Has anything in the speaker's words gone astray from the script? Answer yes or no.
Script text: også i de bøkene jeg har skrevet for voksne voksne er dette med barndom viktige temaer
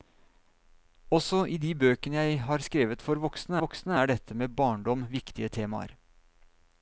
no